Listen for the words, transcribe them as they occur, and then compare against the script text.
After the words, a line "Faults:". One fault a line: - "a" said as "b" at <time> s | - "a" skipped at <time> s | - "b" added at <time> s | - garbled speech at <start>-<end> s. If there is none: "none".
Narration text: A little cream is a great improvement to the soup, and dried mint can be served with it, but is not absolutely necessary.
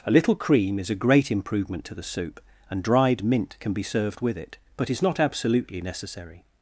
A little cream is a great improvement to the soup, and dried mint can be served with it, but is not absolutely necessary.
Faults:
none